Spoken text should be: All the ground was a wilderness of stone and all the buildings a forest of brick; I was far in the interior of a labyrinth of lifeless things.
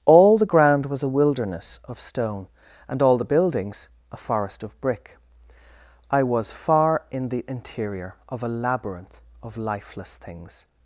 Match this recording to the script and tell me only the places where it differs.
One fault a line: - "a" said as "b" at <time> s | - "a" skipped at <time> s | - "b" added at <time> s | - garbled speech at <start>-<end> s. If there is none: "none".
none